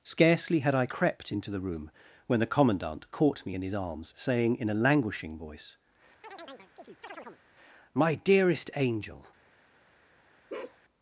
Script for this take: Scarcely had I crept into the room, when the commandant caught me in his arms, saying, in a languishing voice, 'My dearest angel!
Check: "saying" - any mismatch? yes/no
no